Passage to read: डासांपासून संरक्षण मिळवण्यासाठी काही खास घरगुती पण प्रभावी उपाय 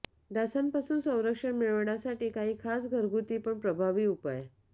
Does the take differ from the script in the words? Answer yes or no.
no